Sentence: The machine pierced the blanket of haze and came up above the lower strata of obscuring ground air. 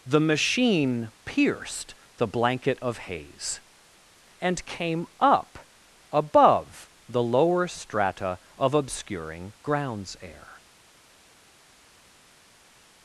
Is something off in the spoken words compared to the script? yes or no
yes